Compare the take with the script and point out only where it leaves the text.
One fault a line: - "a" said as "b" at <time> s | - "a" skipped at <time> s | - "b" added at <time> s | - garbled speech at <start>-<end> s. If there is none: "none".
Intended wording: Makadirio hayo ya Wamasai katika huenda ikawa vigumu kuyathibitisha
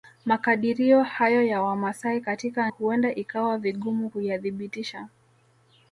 none